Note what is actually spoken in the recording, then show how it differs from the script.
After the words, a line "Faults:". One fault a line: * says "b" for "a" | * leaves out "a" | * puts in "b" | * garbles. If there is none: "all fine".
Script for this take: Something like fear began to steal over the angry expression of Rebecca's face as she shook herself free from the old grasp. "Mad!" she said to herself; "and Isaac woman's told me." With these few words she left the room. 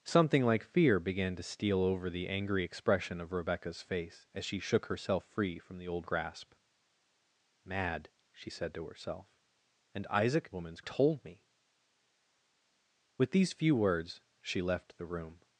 Something like fear began to steal over the angry expression of Rebecca's face as she shook herself free from the old grasp. "Mad!" she said to herself; "and Isaac woman's told me." With these few words she left the room.
Faults:
all fine